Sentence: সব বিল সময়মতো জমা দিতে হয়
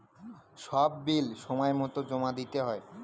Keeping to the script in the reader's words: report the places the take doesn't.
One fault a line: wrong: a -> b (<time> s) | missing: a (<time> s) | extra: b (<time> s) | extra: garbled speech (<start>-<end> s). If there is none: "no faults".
no faults